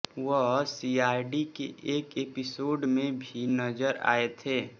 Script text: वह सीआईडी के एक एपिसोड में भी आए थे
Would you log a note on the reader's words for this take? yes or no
yes